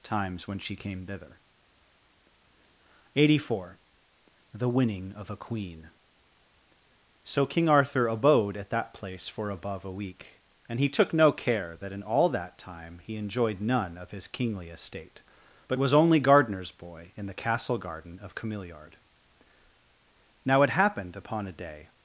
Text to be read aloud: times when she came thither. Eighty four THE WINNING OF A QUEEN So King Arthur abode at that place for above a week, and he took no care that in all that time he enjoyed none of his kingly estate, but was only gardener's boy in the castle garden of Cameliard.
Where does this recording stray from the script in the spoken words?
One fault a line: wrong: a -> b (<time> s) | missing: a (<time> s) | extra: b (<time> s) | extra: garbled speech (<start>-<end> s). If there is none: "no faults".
extra: Now it happened upon a day (20.4 s)